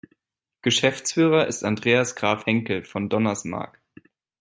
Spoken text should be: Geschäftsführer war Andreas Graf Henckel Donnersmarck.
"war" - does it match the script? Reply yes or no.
no